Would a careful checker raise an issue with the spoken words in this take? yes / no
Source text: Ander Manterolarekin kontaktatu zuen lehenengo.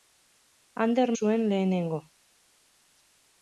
yes